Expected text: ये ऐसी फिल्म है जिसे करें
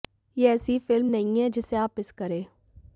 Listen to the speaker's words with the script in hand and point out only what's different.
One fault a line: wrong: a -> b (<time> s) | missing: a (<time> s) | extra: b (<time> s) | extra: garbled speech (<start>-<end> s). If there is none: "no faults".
extra: नहीं (1.1 s)
extra: आप मिस (1.8 s)